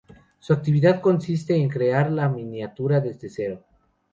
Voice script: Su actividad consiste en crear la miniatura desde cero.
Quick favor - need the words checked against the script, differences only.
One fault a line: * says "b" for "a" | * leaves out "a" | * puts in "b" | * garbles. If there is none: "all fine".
all fine